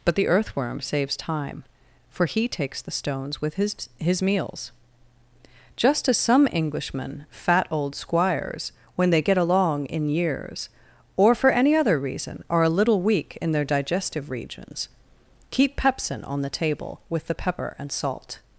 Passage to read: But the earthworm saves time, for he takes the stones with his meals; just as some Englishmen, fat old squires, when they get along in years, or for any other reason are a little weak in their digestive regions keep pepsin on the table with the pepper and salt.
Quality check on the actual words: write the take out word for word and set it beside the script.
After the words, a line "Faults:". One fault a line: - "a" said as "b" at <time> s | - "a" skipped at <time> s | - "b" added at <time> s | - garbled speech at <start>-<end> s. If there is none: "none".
But the earthworm saves time, for he takes the stones with his his meals; just as some Englishmen, fat old squires, when they get along in years, or for any other reason are a little weak in their digestive regions keep pepsin on the table with the pepper and salt.
Faults:
- "his" added at 4.0 s